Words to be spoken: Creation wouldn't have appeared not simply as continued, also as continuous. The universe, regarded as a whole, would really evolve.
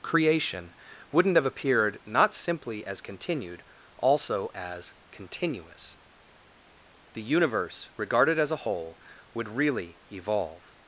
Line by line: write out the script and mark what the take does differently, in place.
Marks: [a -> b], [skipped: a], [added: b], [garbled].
Creation wouldn't have appeared not simply as continued, also as continuous. The universe, regarded as a whole, would really evolve.